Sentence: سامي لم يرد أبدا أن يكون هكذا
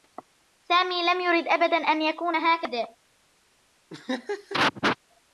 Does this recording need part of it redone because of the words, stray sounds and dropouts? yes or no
yes